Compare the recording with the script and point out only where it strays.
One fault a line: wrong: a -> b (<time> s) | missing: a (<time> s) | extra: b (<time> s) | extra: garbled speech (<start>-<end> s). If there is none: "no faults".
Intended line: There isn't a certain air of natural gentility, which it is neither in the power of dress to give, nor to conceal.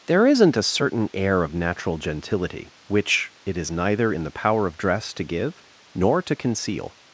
no faults